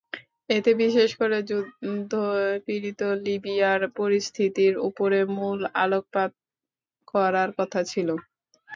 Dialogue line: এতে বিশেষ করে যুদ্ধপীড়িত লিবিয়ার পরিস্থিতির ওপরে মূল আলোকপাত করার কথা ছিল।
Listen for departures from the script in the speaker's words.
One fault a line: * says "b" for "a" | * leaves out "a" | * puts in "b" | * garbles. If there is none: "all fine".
all fine